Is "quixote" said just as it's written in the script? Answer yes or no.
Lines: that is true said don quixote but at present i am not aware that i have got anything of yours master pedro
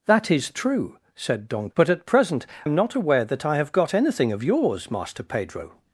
no